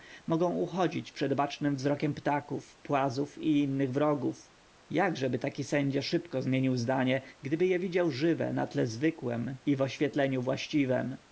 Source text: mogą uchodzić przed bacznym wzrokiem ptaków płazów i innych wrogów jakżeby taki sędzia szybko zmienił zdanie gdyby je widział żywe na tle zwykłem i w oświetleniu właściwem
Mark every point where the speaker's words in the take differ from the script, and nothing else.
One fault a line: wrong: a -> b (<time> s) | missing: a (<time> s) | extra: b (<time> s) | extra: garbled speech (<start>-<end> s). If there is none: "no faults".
no faults